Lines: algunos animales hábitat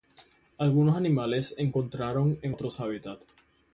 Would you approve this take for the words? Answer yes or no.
no